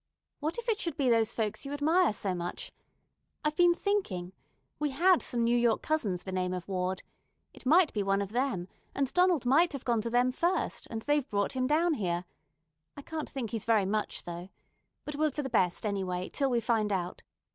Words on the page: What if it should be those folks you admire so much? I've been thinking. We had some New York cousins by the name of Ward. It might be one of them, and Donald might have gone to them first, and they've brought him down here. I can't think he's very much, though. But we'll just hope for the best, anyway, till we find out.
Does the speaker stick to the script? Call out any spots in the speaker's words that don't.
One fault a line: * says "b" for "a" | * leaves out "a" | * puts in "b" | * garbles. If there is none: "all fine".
* leaves out "by"
* leaves out "just hope"